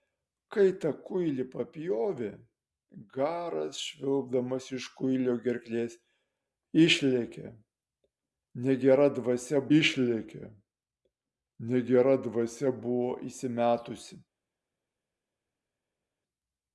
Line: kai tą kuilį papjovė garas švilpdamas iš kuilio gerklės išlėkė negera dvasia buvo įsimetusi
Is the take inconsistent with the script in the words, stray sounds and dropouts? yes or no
yes